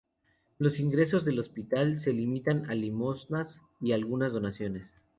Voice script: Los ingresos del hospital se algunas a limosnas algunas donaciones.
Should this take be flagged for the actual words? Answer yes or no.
yes